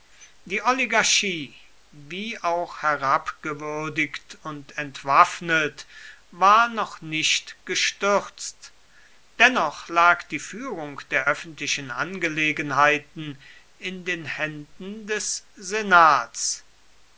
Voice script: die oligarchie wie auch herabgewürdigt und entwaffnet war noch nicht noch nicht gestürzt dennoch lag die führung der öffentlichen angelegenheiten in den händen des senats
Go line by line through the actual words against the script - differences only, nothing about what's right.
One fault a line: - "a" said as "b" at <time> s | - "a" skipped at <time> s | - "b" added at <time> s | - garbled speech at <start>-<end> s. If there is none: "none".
- "noch nicht" skipped at 7.6 s